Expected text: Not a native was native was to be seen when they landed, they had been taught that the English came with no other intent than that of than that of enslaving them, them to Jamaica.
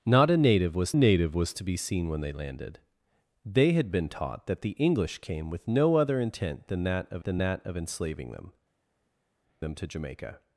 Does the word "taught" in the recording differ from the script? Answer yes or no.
no